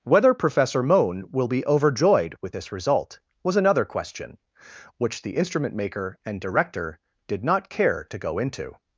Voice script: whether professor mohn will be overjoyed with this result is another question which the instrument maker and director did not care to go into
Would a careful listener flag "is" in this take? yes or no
yes